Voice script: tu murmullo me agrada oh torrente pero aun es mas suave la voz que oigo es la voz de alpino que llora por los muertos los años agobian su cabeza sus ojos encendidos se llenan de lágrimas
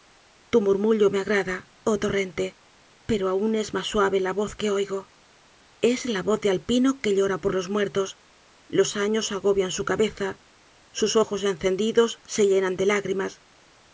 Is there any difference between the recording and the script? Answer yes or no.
no